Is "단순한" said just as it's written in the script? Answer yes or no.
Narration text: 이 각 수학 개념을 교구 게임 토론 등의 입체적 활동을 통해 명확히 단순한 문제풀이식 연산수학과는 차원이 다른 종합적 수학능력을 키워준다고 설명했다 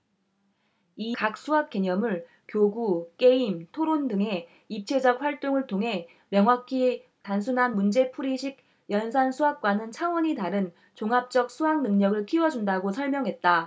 yes